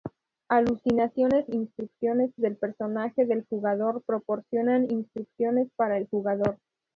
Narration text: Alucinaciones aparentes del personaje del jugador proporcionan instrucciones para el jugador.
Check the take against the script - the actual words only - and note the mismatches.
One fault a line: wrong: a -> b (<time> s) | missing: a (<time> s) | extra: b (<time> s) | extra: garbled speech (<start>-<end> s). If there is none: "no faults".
wrong: aparentes -> instrucciones (1.4 s)